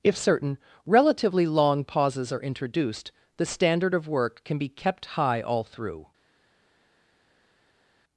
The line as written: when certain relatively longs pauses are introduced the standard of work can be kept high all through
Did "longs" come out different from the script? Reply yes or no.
yes